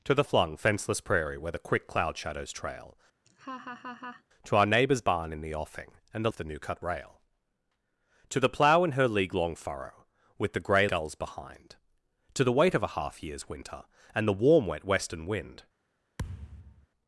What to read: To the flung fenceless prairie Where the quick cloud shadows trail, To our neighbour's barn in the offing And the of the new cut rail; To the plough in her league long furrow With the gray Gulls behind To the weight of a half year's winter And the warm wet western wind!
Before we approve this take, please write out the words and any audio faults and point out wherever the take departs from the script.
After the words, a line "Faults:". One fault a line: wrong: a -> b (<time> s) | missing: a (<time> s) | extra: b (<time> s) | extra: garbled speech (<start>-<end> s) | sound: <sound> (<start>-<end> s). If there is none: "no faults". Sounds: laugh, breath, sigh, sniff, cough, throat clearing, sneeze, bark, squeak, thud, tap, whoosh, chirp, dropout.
To the flung fenceless prairie Where the quick cloud shadows trail, To our neighbour's barn in the offing And the of the new cut rail; To the plough in her league long furrow With the gray Gulls behind To the weight of a half year's winter And the warm wet western wind!
Faults:
sound: laugh (3.3-4.2 s)
sound: thud (16.2-16.9 s)